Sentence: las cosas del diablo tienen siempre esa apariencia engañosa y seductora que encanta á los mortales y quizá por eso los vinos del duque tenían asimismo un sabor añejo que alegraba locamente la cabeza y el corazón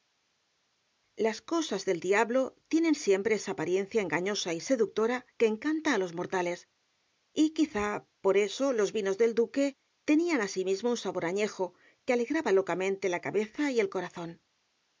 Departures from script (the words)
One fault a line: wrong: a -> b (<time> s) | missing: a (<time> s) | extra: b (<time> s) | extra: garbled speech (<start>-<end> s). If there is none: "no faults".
no faults